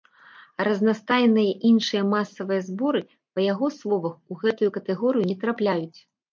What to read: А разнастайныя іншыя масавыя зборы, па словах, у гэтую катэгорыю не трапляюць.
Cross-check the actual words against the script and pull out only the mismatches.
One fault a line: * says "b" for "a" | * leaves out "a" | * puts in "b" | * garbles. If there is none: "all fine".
* puts in "яго"